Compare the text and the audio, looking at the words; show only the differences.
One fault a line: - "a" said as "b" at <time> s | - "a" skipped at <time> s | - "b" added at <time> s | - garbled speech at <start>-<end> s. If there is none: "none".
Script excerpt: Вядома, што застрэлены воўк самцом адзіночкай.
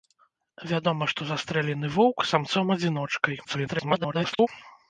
- garbled speech at 3.4-4.5 s